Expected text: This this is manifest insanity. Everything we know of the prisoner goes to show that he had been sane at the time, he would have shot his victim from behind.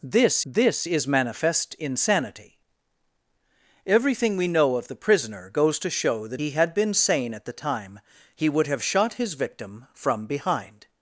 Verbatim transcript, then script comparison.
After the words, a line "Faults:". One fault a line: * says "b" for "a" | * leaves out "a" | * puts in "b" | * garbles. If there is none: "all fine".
This this is manifest insanity. Everything we know of the prisoner goes to show that he had been sane at the time, he would have shot his victim from behind.
Faults:
all fine